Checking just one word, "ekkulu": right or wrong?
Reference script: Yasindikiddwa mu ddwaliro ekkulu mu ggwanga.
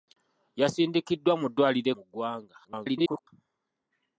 wrong